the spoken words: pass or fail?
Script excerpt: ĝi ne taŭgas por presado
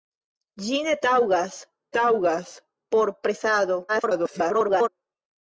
fail